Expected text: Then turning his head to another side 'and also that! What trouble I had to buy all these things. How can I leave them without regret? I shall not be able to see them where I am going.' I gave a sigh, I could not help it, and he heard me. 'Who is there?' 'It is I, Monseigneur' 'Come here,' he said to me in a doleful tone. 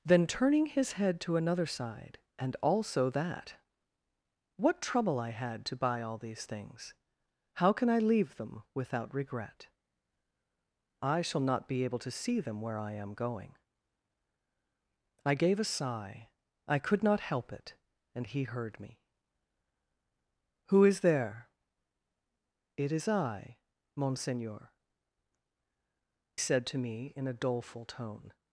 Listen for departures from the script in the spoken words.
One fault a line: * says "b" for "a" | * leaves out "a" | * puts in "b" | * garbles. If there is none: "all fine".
* leaves out "Come here he"